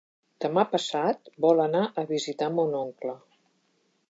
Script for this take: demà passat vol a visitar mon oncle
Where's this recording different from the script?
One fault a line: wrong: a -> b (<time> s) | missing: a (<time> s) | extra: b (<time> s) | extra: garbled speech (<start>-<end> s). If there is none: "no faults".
extra: anar (1.6 s)